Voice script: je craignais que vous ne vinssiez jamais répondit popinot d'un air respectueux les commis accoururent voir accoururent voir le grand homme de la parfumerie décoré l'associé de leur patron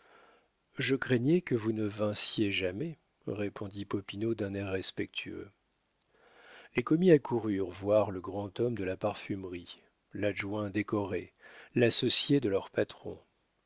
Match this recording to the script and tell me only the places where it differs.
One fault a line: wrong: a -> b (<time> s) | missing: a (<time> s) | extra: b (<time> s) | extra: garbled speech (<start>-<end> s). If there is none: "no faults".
missing: accoururent voir (8.1 s)
extra: l'adjoint (10.1 s)